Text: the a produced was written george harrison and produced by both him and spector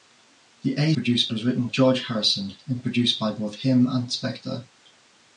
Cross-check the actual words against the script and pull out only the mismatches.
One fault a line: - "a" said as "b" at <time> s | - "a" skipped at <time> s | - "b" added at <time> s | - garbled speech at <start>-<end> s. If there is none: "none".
none